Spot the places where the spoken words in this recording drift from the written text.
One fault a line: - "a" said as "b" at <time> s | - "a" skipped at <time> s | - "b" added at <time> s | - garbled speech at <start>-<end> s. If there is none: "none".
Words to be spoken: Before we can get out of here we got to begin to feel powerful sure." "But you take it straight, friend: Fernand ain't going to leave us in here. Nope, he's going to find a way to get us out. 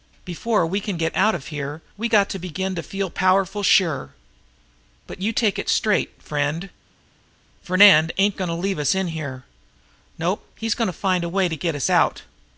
none